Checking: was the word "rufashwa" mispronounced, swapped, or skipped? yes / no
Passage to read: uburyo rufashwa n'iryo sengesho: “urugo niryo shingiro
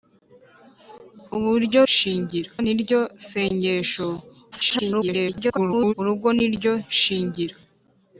yes